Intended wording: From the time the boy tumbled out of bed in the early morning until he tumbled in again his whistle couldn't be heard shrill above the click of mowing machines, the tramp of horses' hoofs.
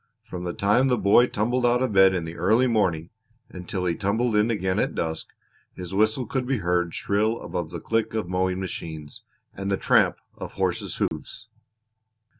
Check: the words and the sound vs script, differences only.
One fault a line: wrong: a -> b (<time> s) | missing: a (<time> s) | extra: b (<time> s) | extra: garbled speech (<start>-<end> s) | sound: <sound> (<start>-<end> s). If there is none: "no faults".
extra: at dusk (4.8 s)
wrong: couldn't -> could (6.2 s)
extra: and (9.5 s)
sound: dropout (11.1-11.1 s)